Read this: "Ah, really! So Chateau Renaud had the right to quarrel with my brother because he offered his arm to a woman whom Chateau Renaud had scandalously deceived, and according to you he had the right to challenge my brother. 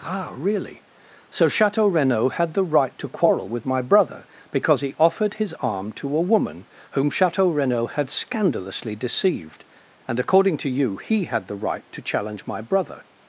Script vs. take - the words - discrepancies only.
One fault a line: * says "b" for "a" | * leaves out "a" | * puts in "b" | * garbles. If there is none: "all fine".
all fine